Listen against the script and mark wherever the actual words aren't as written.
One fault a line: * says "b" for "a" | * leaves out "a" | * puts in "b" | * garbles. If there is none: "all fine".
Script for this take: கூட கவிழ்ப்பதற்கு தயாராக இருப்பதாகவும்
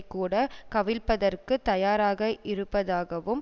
all fine